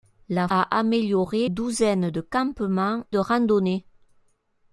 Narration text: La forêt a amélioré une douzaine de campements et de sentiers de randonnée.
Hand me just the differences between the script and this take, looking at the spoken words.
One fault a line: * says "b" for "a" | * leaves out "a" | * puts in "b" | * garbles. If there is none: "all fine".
* leaves out "forêt"
* leaves out "une"
* leaves out "et de sentiers"